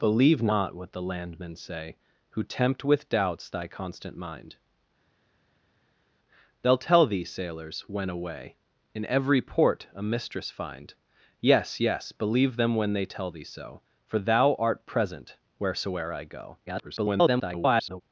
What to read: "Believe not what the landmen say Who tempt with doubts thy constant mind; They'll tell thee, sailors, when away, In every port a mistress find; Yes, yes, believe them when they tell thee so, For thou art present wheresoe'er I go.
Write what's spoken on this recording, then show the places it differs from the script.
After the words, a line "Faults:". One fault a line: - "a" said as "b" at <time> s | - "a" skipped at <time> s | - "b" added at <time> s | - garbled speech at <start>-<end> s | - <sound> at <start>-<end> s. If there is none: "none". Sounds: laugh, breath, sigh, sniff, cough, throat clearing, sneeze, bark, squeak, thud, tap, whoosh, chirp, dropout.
"Believe not what the landmen say Who tempt with doubts thy constant mind; They'll tell thee, sailors, when away, In every port a mistress find; Yes, yes, believe them when they tell thee so, For thou art present wheresoe'er I go. [garbled]
Faults:
- garbled speech at 16.7-18.0 s